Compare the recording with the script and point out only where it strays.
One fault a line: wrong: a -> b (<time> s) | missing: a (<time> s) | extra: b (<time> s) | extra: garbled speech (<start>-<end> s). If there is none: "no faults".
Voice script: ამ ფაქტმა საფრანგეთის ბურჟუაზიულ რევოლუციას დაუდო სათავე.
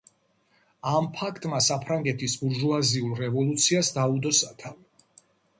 no faults